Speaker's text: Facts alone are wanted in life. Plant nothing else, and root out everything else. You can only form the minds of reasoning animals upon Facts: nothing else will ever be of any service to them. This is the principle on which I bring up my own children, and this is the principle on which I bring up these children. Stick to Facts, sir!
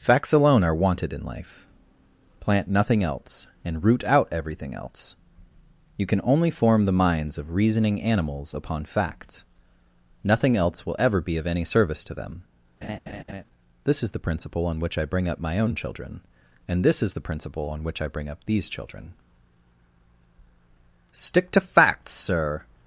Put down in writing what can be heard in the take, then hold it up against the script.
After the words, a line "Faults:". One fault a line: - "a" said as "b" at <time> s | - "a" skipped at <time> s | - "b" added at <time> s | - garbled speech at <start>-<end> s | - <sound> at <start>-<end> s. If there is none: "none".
Facts alone are wanted in life. Plant nothing else, and root out everything else. You can only form the minds of reasoning animals upon Facts: nothing else will ever be of any service to them. This is the principle on which I bring up my own children, and this is the principle on which I bring up these children. Stick to Facts, sir!
Faults:
- laugh at 12.8-13.4 s